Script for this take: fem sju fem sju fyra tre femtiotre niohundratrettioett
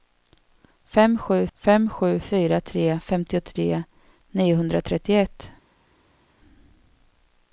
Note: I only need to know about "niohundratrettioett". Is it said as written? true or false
true